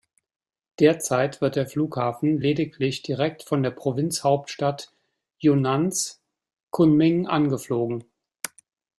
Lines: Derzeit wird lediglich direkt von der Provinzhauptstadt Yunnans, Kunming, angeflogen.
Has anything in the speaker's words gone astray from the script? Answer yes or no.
yes